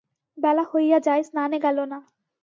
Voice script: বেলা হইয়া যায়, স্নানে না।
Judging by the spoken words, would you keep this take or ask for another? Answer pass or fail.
fail